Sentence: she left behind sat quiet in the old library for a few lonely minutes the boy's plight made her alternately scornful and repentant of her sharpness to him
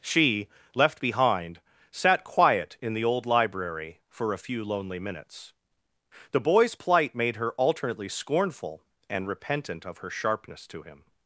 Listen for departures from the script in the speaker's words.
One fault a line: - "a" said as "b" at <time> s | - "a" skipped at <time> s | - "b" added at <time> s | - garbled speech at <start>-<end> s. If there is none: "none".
none